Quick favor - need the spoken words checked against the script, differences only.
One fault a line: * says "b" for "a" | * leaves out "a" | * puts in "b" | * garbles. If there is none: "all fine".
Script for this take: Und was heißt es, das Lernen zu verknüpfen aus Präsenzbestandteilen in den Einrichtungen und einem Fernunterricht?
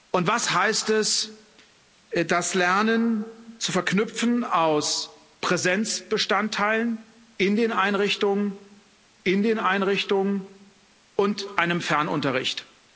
* puts in "in den Einrichtungen"